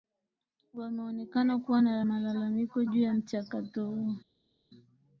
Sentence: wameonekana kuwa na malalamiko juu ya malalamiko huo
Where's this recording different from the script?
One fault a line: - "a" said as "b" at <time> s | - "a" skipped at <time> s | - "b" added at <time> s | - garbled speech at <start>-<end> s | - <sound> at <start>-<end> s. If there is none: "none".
- "malalamiko" said as "mchakato" at 3.1 s